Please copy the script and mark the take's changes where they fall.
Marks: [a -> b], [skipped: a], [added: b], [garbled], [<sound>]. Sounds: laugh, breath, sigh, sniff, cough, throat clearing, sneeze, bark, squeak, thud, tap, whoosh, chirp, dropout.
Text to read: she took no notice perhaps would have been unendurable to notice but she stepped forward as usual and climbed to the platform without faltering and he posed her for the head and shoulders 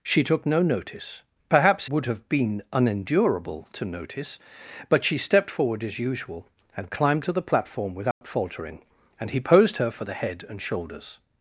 she took no notice perhaps would have been unendurable to notice but she stepped forward as usual and climbed to the platform without [dropout] faltering and he posed her for the head and shoulders